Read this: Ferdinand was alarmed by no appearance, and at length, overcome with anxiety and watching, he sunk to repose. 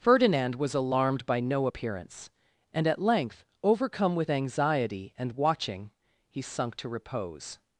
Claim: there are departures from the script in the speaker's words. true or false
false